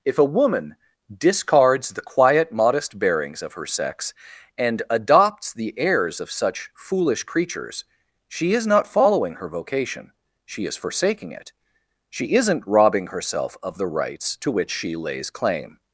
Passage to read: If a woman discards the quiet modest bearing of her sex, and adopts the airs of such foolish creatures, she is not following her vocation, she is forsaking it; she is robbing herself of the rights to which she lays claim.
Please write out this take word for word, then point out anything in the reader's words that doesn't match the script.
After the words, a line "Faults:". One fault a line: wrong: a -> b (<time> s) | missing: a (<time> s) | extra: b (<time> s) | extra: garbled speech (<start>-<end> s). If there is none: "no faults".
If a woman discards the quiet modest bearings of her sex, and adopts the airs of such foolish creatures, she is not following her vocation, she is forsaking it; she isn't robbing herself of the rights to which she lays claim.
Faults:
wrong: bearing -> bearings (3.0 s)
wrong: is -> isn't (12.3 s)